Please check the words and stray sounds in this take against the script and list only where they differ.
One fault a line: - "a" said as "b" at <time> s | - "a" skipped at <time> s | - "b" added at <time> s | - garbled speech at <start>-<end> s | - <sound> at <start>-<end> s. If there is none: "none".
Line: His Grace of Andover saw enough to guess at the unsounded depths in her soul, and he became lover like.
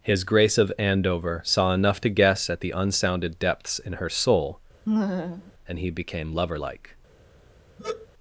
- laugh at 4.9-5.5 s
- sigh at 7.8-8.1 s